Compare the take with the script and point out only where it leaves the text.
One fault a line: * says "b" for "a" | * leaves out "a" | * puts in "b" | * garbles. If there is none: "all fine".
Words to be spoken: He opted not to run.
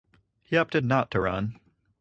all fine